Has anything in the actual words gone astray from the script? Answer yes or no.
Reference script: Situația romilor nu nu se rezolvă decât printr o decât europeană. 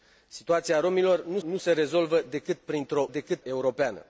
no